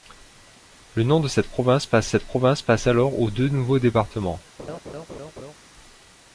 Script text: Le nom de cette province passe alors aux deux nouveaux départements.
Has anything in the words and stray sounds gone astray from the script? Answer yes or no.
yes